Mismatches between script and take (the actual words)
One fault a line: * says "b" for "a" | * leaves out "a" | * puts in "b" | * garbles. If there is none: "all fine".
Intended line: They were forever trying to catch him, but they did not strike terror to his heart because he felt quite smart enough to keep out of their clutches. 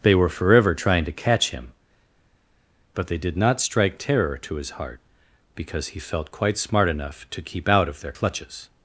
all fine